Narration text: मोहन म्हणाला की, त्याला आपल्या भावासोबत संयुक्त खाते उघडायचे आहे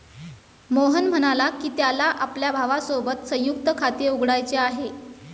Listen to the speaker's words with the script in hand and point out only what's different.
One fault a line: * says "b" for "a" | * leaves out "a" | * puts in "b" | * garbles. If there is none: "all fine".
all fine